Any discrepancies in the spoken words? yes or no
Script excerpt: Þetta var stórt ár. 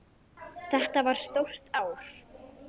no